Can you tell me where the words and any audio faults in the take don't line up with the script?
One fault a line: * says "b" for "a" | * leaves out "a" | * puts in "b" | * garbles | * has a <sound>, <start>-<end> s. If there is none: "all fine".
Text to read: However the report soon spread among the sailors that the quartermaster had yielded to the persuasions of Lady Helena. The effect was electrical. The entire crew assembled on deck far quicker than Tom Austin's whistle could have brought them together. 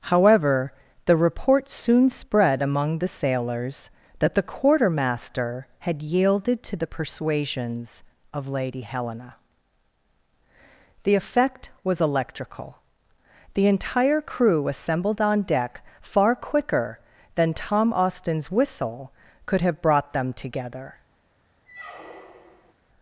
* has a squeak, 21.7-22.7 s